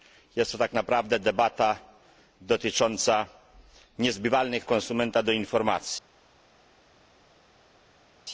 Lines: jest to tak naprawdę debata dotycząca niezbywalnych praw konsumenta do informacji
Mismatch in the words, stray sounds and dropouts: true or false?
true